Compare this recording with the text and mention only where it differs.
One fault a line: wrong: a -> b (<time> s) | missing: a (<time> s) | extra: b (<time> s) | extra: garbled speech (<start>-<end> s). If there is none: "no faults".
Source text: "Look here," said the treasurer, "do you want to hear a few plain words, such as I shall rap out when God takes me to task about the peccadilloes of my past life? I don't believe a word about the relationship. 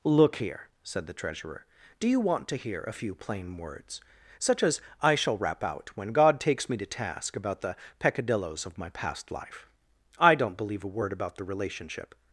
no faults